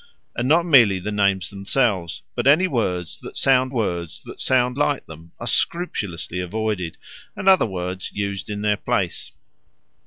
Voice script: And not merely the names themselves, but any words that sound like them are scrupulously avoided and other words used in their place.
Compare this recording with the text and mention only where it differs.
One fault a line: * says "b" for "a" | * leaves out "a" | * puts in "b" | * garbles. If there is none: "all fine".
* puts in "words that sound"